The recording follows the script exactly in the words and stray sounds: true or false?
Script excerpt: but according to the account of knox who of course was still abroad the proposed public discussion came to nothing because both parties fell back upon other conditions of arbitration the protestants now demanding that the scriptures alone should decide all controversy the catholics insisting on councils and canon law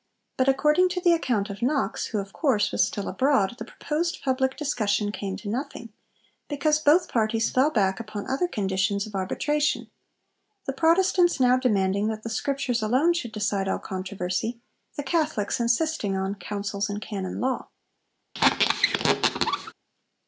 false